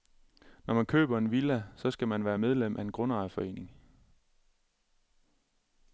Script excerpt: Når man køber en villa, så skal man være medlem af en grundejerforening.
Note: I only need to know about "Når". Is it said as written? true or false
true